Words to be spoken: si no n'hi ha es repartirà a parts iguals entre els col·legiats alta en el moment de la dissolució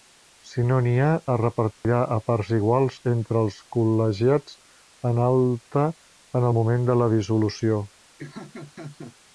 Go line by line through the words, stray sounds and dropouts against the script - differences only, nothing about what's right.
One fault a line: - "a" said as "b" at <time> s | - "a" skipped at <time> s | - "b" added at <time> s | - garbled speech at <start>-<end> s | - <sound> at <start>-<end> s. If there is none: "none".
- dropout at 1.7-1.8 s
- "en" added at 5.1 s
- laugh at 8.2-9.2 s